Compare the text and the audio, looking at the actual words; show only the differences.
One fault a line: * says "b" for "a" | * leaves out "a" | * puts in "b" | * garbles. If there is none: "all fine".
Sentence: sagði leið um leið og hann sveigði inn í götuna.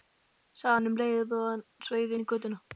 * says "hann" for "leið"